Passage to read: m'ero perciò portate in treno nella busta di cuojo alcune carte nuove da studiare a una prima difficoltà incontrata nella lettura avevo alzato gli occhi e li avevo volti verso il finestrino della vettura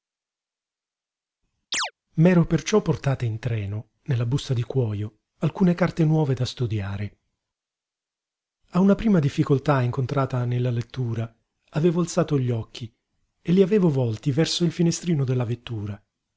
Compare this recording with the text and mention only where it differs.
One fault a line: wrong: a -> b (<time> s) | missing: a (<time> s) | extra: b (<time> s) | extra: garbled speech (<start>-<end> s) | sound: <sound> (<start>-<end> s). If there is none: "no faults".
sound: chirp (1.7-1.9 s)